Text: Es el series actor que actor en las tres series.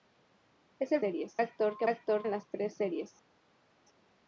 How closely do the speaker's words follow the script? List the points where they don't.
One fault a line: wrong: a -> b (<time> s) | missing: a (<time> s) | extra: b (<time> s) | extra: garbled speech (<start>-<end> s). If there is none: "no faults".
no faults